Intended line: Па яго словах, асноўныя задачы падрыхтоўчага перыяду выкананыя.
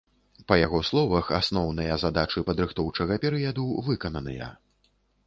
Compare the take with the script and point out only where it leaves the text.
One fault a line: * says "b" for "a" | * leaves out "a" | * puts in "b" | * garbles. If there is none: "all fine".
all fine